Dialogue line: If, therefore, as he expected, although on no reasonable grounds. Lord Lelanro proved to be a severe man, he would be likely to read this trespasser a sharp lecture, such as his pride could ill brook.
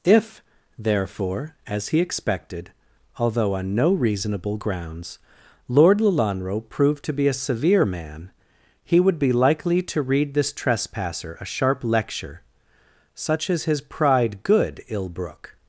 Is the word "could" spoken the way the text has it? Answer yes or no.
no